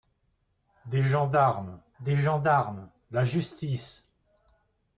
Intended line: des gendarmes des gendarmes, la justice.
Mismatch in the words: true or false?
false